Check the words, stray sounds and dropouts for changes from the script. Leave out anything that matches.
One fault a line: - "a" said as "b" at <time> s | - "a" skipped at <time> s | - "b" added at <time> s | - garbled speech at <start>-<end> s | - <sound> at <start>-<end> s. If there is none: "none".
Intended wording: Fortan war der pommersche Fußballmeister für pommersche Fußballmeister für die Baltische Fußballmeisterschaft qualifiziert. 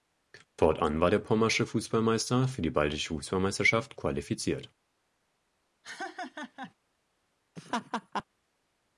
- "pommersche Fußballmeister für" skipped at 2.6 s
- laugh at 5.8-6.7 s
- laugh at 7.6-8.2 s